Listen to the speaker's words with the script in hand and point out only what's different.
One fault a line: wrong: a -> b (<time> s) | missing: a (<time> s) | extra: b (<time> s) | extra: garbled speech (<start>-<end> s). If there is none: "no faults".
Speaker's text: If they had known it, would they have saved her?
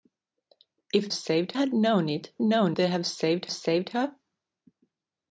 wrong: they -> saved (1.1 s)
wrong: would -> known (2.4 s)
extra: saved (3.5 s)